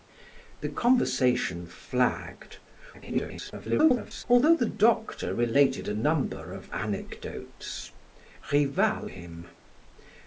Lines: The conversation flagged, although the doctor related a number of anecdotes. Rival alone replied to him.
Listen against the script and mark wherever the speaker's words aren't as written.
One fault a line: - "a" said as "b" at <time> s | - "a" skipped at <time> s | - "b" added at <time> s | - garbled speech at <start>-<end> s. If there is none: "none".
- garbled speech at 2.9-4.2 s
- "alone replied to" skipped at 9.1 s